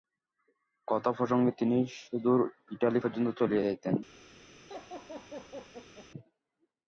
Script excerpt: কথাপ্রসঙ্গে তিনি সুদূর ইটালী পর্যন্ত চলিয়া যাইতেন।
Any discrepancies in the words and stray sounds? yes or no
yes